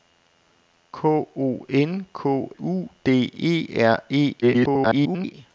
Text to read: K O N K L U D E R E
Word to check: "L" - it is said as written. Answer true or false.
false